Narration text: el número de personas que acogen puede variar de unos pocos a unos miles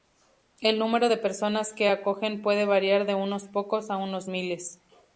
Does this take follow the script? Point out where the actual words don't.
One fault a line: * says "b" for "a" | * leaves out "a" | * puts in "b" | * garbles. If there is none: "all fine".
all fine